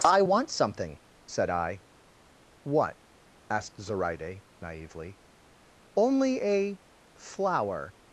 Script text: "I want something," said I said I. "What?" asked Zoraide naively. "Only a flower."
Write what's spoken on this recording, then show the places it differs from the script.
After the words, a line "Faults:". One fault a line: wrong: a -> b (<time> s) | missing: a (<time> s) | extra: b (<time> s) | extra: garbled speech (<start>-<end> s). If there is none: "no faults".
"I want something," said I. "What?" asked Zoraide naively. "Only a flower."
Faults:
missing: said I (1.8 s)